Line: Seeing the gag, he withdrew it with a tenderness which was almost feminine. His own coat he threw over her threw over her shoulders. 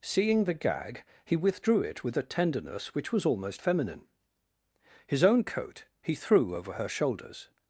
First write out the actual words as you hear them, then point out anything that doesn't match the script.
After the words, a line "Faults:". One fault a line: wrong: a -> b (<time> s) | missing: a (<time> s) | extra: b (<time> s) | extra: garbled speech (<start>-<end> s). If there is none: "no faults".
Seeing the gag, he withdrew it with a tenderness which was almost feminine. His own coat he threw over her shoulders.
Faults:
missing: threw over her (6.9 s)